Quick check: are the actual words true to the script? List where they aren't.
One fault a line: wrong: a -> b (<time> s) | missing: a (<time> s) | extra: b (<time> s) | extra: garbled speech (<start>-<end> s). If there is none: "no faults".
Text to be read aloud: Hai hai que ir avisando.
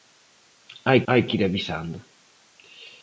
no faults